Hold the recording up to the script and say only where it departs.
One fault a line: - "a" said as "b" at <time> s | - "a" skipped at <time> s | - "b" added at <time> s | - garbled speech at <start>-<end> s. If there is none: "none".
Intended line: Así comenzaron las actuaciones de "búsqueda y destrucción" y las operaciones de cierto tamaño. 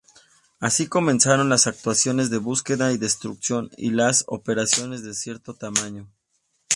none